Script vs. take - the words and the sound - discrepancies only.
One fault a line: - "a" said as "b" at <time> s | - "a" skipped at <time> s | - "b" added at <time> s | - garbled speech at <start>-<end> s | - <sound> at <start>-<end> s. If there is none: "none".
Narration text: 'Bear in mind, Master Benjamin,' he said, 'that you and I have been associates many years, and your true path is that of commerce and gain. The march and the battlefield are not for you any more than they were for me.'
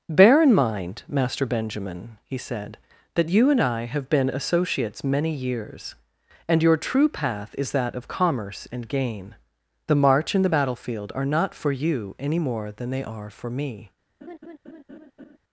- "were" said as "are" at 13.0 s
- laugh at 14.2-15.4 s